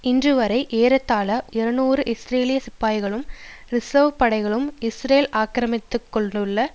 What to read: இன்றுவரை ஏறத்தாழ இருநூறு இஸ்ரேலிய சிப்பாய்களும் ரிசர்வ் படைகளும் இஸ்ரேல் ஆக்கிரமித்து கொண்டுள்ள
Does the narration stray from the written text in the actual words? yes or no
no